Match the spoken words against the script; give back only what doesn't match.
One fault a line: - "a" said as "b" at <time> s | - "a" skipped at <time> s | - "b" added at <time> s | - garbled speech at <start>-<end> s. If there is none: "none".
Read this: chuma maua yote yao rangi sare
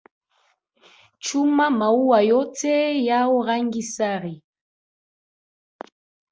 none